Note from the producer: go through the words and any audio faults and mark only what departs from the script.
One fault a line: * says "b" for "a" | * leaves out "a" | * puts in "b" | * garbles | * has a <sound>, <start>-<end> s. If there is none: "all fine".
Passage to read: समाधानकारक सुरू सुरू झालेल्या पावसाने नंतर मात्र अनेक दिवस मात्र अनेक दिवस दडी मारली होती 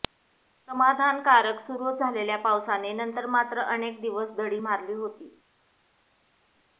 * leaves out "सुरू"
* leaves out "मात्र अनेक दिवस"